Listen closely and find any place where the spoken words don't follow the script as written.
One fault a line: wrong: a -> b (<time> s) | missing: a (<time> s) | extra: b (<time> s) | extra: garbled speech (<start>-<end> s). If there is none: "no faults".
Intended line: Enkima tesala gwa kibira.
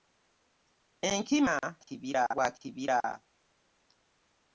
wrong: tesala -> kibira (1.9 s)